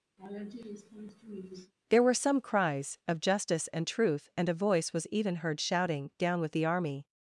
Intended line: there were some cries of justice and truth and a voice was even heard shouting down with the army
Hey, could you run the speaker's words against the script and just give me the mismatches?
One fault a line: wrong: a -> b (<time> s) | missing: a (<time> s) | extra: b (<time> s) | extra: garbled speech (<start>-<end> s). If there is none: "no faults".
no faults